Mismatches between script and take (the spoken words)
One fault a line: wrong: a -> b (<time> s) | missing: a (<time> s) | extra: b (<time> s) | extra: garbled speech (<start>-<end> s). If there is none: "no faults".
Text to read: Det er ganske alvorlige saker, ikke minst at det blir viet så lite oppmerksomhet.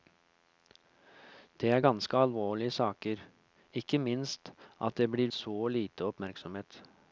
missing: viet (5.3 s)